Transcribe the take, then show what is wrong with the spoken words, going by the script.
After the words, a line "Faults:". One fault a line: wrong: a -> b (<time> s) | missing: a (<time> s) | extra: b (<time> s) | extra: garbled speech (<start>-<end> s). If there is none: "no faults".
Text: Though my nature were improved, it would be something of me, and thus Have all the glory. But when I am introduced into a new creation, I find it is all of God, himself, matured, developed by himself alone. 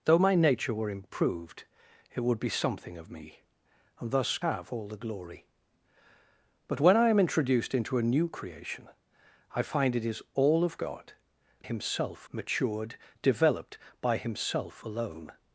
Though my nature were improved, it would be something of me, and thus Have all the glory. But when I am introduced into a new creation, I find it is all of God, himself, matured, developed by himself alone.
Faults:
no faults